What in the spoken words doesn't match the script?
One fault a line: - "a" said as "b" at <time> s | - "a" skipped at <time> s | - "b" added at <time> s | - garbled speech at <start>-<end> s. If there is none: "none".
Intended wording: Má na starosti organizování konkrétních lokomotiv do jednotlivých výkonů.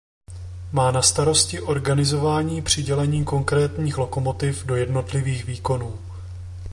- "přidělení" added at 2.6 s